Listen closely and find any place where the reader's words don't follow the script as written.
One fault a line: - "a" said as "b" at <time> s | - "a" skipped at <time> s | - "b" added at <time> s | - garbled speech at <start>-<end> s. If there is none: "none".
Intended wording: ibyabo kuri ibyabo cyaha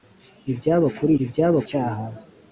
none